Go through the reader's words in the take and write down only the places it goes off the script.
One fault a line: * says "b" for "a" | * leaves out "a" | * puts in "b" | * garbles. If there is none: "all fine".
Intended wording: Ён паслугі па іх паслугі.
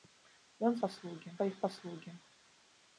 all fine